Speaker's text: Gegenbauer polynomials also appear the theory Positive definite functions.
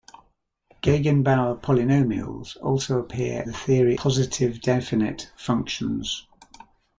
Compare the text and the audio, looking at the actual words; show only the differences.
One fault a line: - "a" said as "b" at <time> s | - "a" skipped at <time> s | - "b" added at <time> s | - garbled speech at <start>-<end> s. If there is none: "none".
none